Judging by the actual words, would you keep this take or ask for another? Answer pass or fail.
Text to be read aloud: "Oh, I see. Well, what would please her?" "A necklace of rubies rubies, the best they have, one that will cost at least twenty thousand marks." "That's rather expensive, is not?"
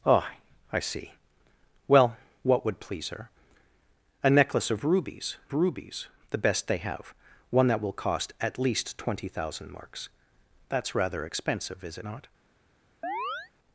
pass